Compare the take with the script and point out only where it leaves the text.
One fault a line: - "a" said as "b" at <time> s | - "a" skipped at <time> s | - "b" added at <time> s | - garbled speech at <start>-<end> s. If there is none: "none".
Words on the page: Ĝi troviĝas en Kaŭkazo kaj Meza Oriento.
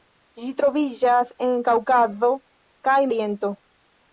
- "Meza" skipped at 3.0 s